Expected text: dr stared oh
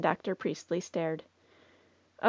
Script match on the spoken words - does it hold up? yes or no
no